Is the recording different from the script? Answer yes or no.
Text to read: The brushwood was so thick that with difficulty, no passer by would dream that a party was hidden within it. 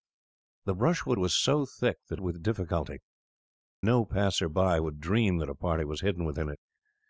no